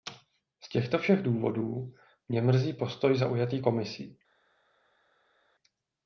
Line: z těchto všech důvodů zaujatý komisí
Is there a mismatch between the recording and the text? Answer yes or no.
yes